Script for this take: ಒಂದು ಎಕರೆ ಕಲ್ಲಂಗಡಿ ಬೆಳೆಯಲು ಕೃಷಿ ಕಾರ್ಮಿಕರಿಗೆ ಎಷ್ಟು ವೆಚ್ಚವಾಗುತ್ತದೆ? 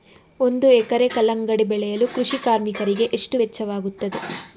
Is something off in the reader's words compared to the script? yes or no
no